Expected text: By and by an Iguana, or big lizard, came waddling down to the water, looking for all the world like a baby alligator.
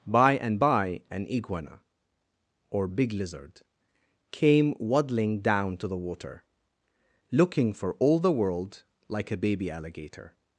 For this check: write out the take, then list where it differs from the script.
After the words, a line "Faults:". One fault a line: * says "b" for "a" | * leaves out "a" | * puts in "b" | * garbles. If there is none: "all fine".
By and by an Iguana, or big lizard, came waddling down to the water, looking for all the world like a baby alligator.
Faults:
all fine